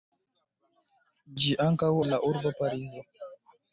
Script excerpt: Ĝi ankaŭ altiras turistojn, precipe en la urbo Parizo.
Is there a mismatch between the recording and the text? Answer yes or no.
yes